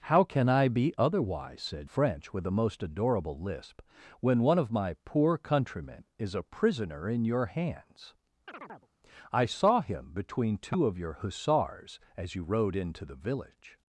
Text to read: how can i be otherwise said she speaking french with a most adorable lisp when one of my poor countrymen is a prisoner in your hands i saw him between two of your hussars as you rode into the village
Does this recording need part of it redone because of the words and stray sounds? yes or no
yes